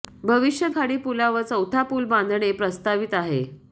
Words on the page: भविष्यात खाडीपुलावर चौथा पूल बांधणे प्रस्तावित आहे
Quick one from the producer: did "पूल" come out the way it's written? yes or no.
yes